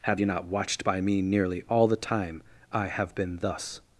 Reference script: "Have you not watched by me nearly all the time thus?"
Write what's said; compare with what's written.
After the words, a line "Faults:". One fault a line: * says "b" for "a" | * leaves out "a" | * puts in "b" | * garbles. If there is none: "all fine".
"Have you not watched by me nearly all the time I have been thus?"
Faults:
* puts in "I have been"